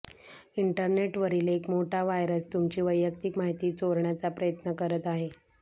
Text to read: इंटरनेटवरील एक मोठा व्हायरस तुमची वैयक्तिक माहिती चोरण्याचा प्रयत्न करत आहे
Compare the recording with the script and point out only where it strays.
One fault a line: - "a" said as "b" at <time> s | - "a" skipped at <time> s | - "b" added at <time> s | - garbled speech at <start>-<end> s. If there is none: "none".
none